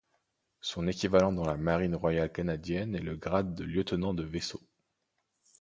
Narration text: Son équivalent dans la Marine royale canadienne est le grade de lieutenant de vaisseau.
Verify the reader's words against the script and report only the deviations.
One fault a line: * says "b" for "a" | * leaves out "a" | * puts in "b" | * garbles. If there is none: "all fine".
all fine